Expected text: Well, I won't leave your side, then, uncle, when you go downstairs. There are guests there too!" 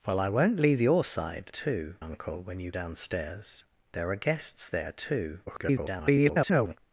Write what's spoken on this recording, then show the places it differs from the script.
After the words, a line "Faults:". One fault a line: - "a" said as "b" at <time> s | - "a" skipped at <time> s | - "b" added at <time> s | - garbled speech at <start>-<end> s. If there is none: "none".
Well, I won't leave your side, too, uncle, when you downstairs. There are guests there too!" [garbled]
Faults:
- "then" said as "too" at 1.5 s
- "go" skipped at 2.7 s
- garbled speech at 5.5-6.8 s